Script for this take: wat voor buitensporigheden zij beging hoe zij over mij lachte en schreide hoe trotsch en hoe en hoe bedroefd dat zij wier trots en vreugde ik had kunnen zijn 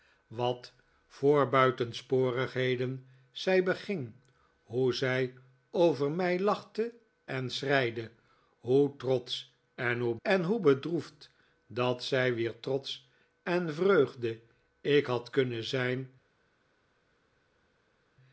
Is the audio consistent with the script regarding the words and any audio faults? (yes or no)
yes